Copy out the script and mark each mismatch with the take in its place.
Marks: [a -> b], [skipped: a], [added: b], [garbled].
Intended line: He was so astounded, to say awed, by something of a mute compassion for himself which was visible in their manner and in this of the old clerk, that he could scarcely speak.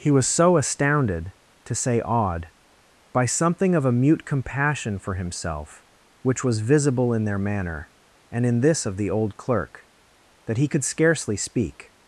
He was so astounded, to say awed, by something of a mute compassion for himself which was visible in their manner and in this of the old clerk, that he could scarcely speak.